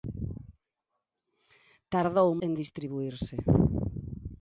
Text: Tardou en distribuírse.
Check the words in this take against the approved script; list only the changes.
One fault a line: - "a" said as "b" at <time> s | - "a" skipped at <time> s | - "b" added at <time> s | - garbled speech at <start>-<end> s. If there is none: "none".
none